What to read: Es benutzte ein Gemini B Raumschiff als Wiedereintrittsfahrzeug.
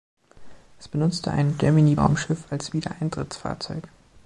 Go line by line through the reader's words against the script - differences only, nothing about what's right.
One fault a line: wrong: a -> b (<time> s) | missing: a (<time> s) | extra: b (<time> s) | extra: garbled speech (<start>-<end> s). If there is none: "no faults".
missing: B (1.9 s)